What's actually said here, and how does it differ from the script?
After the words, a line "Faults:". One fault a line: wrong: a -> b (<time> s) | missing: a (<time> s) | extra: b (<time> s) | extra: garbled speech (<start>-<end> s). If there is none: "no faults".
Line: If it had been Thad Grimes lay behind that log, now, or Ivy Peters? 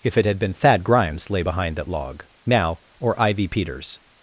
If it had been Thad Grimes lay behind that log, now, or Ivy Peters?
Faults:
no faults